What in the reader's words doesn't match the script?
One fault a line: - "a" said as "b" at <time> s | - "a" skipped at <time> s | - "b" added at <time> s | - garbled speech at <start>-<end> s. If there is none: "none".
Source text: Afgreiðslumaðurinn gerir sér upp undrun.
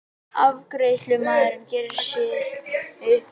none